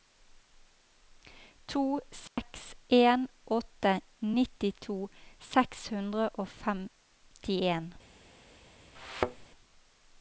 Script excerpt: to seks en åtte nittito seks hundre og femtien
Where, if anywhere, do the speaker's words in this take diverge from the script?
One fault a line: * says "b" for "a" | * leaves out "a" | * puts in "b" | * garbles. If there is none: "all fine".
all fine